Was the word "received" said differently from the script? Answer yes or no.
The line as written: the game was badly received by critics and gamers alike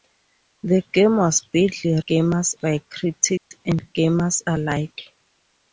yes